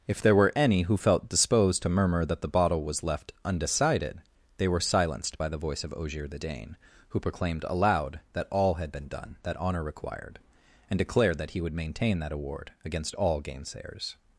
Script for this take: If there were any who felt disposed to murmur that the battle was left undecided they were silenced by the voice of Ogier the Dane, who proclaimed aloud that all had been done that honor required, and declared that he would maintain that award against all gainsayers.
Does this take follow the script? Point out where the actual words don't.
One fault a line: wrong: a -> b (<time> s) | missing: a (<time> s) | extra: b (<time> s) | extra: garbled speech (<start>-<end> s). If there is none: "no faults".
wrong: battle -> bottle (2.5 s)